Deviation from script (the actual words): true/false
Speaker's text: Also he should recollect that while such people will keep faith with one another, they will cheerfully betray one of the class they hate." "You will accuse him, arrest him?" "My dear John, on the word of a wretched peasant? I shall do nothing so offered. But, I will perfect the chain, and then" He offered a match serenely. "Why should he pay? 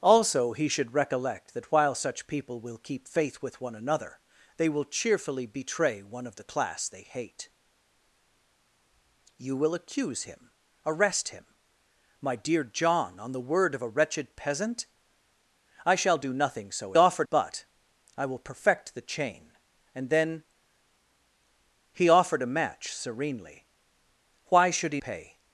false